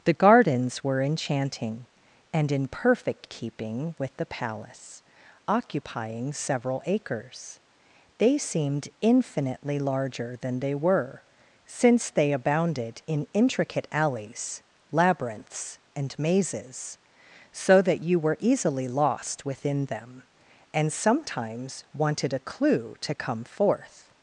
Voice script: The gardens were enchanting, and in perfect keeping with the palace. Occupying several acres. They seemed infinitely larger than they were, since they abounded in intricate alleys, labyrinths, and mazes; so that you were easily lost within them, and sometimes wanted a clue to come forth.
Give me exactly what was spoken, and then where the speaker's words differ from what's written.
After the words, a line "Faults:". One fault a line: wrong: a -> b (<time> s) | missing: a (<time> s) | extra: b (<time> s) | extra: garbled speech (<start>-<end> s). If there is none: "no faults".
The gardens were enchanting, and in perfect keeping with the palace. Occupying several acres. They seemed infinitely larger than they were, since they abounded in intricate alleys, labyrinths, and mazes; so that you were easily lost within them, and sometimes wanted a clue to come forth.
Faults:
no faults